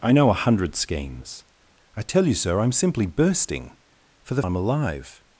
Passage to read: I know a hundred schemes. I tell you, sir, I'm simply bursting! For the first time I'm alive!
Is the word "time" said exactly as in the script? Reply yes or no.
no